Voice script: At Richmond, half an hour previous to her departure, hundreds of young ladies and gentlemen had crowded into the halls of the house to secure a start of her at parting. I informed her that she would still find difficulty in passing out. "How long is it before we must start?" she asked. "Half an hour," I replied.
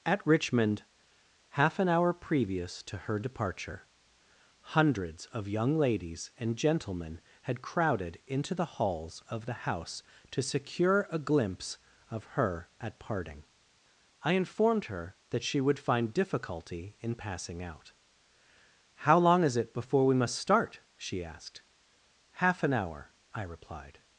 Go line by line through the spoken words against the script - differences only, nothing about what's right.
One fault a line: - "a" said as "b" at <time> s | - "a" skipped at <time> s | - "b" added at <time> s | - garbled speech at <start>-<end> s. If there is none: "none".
- "start" said as "glimpse" at 11.2 s
- "still" skipped at 15.8 s